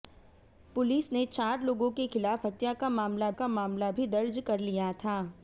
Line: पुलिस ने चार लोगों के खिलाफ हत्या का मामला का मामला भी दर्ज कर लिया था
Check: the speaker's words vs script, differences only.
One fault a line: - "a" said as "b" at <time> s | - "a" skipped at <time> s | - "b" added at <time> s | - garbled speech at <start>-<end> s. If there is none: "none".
none